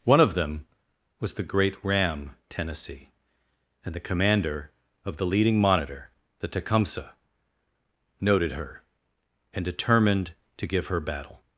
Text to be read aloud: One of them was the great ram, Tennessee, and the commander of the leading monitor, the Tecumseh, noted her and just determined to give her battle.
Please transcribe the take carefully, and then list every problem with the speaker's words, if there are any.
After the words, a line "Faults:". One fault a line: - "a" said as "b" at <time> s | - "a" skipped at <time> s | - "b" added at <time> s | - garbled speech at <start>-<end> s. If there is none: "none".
One of them was the great ram, Tennessee, and the commander of the leading monitor, the Tecumseh, noted her and determined to give her battle.
Faults:
- "just" skipped at 9.6 s